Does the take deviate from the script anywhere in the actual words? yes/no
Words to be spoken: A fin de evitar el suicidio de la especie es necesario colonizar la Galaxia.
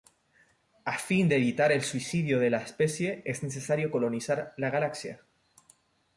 no